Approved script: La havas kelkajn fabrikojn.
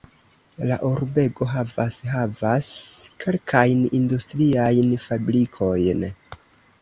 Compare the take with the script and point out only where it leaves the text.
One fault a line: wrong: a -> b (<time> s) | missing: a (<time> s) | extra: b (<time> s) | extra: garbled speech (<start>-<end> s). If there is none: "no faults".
extra: urbego (0.9 s)
extra: havas (2.1 s)
extra: industriajn (4.0 s)